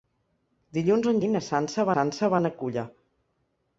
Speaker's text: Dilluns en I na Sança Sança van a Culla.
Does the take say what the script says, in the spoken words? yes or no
yes